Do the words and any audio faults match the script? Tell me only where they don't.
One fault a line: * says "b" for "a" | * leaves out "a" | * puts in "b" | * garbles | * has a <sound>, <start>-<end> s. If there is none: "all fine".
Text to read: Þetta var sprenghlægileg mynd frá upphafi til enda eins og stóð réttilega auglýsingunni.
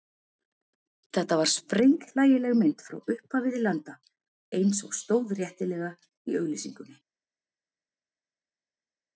* puts in "í"